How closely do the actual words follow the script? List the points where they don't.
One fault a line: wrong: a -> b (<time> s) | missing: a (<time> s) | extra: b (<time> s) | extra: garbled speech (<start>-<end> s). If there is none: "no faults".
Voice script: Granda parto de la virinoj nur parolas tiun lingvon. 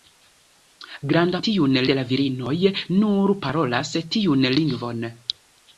wrong: parto -> tiun (1.5 s)